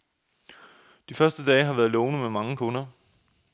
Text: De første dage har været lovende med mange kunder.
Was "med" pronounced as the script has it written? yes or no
yes